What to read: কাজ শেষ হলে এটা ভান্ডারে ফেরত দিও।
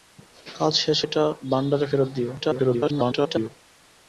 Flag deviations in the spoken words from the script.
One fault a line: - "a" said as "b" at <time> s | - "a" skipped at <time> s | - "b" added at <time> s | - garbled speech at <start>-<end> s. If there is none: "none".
- "হলে" skipped at 1.0 s
- garbled speech at 2.4-3.5 s